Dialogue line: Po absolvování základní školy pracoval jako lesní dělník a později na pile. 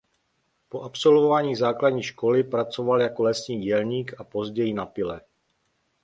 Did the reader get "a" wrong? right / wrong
right